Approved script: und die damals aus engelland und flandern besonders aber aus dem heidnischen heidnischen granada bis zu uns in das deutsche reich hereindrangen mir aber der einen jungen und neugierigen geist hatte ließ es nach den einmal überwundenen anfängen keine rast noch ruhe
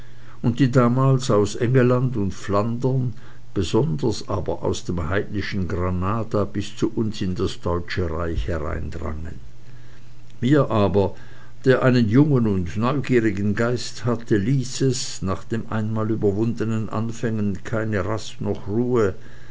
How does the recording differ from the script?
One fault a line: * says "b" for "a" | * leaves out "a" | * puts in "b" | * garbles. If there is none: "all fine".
* leaves out "heidnischen"